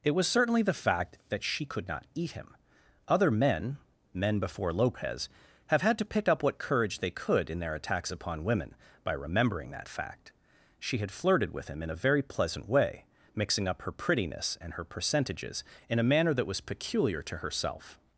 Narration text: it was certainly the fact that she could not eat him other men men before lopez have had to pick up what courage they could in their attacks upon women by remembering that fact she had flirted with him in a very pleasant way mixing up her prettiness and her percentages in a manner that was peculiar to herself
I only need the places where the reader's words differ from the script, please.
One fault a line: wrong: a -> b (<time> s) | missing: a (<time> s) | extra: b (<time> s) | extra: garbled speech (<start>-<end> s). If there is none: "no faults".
no faults